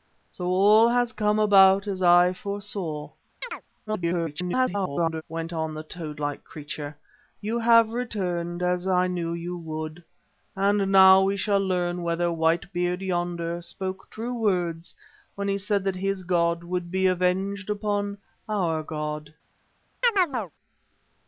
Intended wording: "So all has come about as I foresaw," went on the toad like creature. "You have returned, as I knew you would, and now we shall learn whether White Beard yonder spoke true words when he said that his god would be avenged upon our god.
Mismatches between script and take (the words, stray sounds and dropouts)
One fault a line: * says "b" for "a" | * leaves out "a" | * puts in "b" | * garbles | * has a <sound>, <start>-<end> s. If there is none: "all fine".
* has a chirp, 3.4-3.6 s
* garbles
* has a chirp, 20.0-20.5 s